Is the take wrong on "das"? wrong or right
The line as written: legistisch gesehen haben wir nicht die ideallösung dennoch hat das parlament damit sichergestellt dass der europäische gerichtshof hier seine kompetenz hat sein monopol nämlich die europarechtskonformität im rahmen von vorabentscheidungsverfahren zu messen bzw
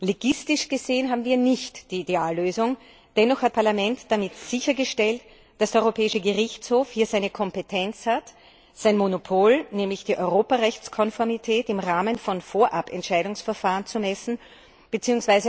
wrong